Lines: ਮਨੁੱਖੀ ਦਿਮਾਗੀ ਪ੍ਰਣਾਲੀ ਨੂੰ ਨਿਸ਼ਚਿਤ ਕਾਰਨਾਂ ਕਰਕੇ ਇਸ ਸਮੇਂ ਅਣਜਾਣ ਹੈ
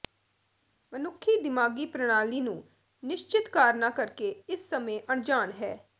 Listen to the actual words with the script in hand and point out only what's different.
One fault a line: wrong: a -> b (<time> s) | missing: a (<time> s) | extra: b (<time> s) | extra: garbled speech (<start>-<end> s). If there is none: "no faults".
no faults